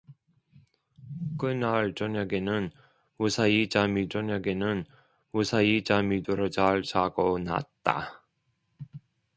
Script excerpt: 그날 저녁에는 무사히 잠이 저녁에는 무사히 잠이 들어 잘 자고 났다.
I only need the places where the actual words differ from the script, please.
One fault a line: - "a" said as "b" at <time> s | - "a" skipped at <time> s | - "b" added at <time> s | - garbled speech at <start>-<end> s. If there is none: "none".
none